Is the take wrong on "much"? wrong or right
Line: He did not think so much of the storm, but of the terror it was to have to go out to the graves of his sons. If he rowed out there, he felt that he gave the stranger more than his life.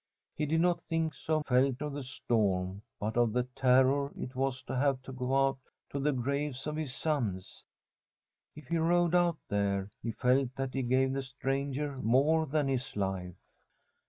wrong